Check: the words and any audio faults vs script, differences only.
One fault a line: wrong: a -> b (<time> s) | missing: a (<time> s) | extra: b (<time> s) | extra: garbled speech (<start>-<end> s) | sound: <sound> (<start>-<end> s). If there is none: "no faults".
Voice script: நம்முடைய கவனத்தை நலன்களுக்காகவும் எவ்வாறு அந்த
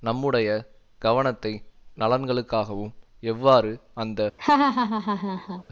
sound: laugh (4.4-5.6 s)